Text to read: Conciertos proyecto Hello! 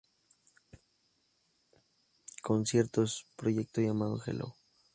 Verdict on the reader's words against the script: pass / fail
fail